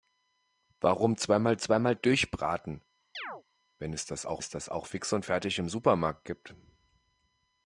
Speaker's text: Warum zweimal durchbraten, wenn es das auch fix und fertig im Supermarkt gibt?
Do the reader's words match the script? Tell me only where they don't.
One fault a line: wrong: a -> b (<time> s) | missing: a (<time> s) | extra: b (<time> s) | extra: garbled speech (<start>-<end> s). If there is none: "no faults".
extra: zweimal (1.6 s)
extra: es das auch (4.4 s)